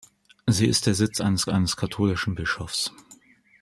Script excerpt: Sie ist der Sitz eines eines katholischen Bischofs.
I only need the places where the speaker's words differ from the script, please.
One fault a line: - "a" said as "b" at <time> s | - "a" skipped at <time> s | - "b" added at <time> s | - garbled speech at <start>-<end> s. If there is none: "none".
none